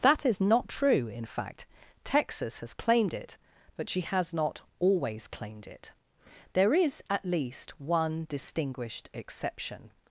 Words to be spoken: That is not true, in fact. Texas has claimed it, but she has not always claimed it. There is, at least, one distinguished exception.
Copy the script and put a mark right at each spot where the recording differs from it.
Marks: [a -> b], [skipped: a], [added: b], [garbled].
That is not true, in fact. Texas has claimed it, but she has not always claimed it. There is, at least, one distinguished exception.